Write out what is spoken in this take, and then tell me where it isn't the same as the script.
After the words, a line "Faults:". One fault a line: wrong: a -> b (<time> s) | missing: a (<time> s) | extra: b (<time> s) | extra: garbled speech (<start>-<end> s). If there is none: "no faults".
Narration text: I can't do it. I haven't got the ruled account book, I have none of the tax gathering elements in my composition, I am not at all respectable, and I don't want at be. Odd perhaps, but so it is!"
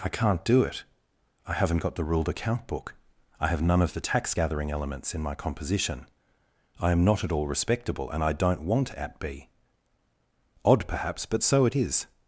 I can't do it. I haven't got the ruled account book, I have none of the tax gathering elements in my composition, I am not at all respectable, and I don't want at be. Odd perhaps, but so it is!"
Faults:
no faults